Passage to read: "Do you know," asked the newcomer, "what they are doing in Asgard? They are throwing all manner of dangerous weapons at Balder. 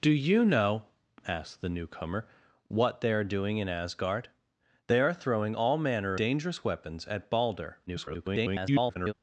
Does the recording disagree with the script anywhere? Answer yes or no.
yes